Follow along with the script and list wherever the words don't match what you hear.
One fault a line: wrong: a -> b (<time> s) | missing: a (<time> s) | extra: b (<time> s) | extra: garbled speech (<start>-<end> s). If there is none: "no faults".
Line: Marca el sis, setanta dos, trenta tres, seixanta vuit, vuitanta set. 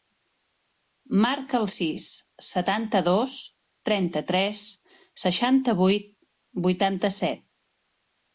no faults